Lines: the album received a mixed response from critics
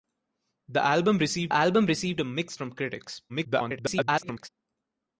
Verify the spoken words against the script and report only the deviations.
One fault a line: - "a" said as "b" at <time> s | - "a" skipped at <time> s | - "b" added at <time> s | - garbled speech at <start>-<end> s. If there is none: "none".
- "album received" added at 1.5 s
- "response" skipped at 2.6 s
- garbled speech at 3.3-4.5 s